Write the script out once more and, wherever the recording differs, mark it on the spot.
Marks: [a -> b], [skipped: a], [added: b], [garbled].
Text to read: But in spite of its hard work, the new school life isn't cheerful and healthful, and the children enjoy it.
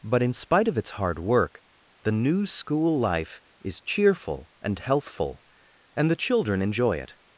But in spite of its hard work, the new school life [isn't -> is] cheerful and healthful, and the children enjoy it.